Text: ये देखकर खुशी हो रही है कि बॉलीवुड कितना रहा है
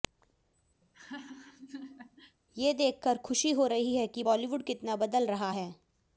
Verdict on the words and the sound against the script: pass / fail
fail